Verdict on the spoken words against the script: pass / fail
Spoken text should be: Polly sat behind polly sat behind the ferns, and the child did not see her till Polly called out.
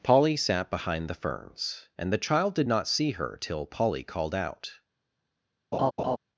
fail